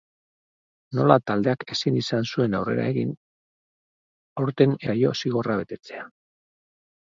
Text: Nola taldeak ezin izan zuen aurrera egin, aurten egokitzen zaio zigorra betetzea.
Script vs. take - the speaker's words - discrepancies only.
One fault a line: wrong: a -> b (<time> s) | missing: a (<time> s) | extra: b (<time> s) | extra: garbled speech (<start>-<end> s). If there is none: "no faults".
missing: egokitzen (4.8 s)